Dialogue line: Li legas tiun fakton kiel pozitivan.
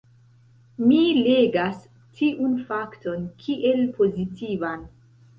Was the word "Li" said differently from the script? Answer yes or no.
yes